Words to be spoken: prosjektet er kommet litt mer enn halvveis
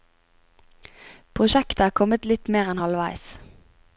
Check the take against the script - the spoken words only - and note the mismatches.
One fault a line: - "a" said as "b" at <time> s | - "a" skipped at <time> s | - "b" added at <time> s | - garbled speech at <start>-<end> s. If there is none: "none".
none